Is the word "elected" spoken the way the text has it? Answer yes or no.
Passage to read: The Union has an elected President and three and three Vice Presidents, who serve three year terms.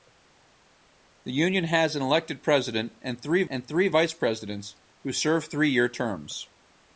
yes